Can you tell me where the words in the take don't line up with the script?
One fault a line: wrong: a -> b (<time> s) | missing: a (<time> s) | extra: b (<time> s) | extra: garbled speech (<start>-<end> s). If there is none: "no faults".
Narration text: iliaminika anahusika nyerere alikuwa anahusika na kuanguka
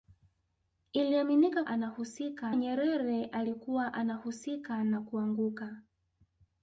no faults